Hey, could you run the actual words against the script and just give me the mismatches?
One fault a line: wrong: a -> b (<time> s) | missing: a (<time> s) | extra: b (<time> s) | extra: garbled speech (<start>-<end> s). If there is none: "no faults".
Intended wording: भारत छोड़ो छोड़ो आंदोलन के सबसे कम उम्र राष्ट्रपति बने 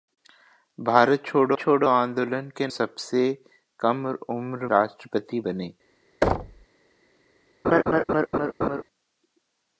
no faults